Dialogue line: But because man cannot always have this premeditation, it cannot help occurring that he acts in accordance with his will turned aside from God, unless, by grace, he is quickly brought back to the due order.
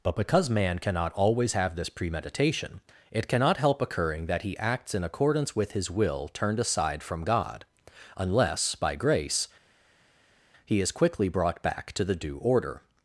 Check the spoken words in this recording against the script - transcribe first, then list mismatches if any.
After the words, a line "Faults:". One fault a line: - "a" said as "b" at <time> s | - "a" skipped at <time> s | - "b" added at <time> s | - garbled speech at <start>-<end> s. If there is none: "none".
But because man cannot always have this premeditation, it cannot help occurring that he acts in accordance with his will turned aside from God, unless, by grace, he is quickly brought back to the due order.
Faults:
none